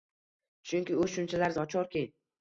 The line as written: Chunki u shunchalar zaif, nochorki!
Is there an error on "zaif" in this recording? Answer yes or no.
yes